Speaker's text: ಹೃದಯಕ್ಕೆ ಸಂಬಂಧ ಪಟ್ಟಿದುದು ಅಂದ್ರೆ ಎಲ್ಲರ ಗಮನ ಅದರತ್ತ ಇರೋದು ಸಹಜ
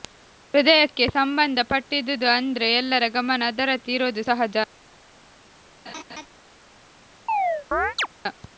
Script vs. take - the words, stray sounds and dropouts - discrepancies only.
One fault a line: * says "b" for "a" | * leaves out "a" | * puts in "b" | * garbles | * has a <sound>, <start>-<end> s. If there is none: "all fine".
* has a laugh, 5.9-6.3 s
* has a chirp, 7.3-8.1 s